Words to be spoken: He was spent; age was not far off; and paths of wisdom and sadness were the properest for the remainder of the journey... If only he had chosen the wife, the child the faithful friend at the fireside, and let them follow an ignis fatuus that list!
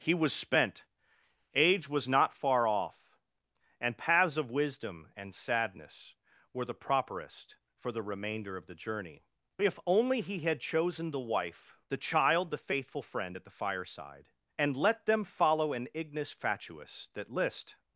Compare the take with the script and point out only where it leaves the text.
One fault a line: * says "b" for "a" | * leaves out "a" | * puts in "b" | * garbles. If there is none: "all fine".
all fine